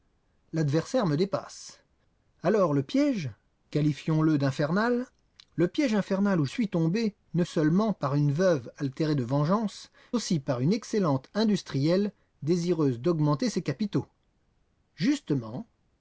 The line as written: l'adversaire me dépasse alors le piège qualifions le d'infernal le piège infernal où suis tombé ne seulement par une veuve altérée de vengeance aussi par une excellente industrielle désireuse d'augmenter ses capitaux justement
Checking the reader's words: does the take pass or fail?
pass